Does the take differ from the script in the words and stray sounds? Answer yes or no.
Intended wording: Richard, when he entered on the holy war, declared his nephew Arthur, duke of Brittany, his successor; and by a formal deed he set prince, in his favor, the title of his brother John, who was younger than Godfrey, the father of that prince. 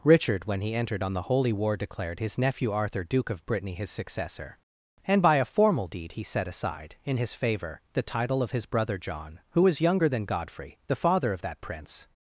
yes